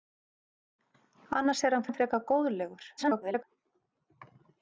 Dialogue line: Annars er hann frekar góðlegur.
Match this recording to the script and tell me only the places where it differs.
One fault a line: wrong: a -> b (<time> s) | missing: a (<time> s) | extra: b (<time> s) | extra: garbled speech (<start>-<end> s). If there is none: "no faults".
extra: hann (1.9 s)
extra: garbled speech (3.0-3.4 s)